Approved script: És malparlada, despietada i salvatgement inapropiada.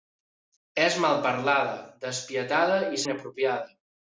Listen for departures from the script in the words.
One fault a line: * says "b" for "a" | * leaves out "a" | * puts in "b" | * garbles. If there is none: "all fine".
* leaves out "salvatgement"